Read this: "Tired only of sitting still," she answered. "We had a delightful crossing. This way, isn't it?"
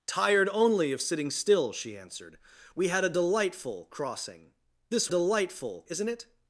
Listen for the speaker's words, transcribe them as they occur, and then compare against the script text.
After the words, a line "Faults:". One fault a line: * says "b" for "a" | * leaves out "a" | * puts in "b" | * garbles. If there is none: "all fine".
"Tired only of sitting still," she answered. "We had a delightful crossing. This delightful, isn't it?"
Faults:
* says "delightful" for "way"